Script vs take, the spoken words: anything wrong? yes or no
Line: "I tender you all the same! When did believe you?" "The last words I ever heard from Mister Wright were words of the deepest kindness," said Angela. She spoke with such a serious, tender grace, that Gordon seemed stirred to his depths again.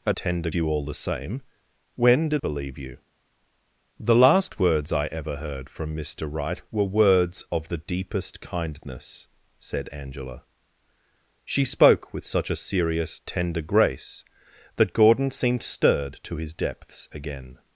no